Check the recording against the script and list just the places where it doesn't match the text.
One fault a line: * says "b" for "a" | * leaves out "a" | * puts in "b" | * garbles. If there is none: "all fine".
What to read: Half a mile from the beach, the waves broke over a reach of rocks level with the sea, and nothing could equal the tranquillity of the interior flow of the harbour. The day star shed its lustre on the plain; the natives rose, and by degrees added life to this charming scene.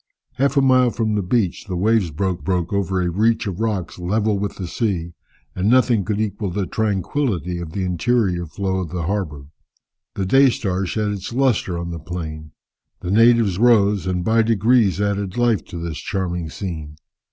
* puts in "broke"